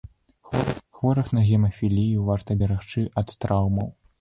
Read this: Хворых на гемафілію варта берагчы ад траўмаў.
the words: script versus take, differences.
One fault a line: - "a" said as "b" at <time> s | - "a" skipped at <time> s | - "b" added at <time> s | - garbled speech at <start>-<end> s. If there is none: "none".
none